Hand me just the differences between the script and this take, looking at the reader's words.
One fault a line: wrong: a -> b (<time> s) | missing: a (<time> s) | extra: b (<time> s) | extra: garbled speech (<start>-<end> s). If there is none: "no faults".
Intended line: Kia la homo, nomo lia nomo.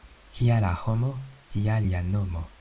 wrong: nomo -> tia (1.5 s)